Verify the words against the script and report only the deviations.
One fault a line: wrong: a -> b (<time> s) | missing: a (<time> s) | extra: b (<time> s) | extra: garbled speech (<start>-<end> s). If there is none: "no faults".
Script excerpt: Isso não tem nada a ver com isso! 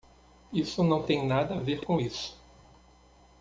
no faults